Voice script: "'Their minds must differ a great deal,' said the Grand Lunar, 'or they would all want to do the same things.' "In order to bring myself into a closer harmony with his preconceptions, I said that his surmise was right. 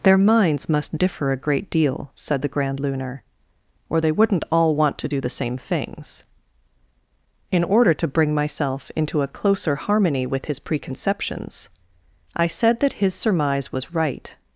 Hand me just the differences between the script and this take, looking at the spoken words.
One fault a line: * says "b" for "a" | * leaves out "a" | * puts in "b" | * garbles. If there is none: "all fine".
* says "wouldn't" for "would"